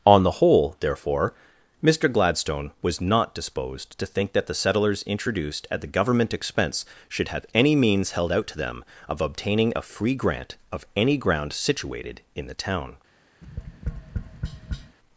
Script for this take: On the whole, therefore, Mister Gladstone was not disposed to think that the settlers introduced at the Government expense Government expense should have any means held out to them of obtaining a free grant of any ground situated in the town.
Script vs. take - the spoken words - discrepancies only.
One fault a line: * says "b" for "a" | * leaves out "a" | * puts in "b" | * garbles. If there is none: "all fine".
* leaves out "Government expense"